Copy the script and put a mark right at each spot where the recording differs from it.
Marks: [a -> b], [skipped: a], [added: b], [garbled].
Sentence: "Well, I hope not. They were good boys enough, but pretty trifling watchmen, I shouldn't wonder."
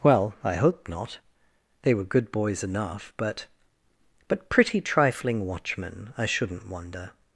"Well, I hope not. They were good boys enough, but [added: but] pretty trifling watchmen, I shouldn't wonder."